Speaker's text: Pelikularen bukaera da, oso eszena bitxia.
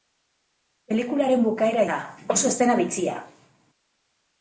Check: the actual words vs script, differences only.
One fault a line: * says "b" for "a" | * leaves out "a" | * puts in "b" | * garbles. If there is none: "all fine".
all fine